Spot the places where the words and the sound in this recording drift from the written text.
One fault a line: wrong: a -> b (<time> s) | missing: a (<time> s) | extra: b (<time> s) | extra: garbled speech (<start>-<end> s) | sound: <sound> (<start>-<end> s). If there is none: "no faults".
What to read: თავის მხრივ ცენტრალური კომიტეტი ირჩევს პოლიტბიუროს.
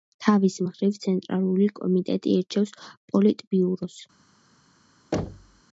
sound: thud (5.1-5.6 s)